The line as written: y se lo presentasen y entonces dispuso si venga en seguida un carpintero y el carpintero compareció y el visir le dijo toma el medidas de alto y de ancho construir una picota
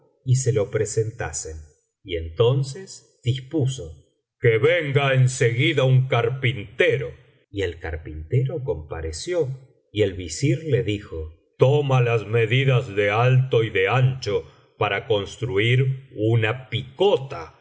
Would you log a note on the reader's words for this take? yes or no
yes